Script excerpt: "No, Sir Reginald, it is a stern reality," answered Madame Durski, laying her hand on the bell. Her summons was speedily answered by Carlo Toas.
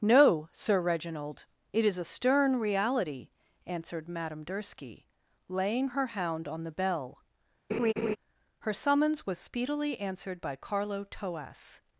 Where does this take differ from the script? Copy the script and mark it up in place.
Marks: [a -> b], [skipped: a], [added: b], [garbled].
"No, Sir Reginald, it is a stern reality," answered Madame Durski, laying her [hand -> hound] on the bell. Her summons was speedily answered by Carlo Toas.